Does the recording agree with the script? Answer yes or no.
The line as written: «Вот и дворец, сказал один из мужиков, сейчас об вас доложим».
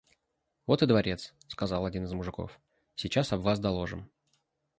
yes